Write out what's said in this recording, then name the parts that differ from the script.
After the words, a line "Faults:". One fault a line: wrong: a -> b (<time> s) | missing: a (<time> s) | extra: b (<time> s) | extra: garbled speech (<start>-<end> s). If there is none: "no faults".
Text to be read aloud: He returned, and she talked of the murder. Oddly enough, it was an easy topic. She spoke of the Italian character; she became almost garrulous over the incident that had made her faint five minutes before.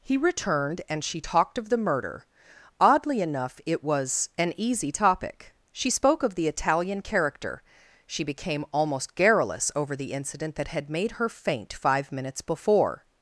He returned, and she talked of the murder. Oddly enough, it was an easy topic. She spoke of the Italian character; she became almost garrulous over the incident that had made her faint five minutes before.
Faults:
no faults